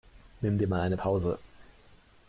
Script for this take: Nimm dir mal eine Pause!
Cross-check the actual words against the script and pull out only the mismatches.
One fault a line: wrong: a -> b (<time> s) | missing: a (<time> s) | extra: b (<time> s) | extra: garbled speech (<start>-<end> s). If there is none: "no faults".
no faults